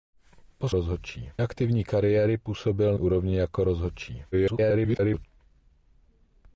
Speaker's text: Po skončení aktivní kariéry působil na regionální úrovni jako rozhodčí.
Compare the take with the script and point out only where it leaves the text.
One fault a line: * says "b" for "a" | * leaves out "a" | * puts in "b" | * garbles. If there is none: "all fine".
* says "rozhodčí" for "skončení"
* leaves out "na regionální"
* garbles